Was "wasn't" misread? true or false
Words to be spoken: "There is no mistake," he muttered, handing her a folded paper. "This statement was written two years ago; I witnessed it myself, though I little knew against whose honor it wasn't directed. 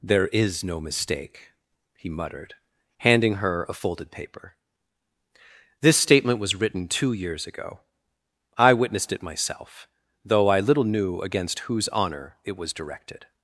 true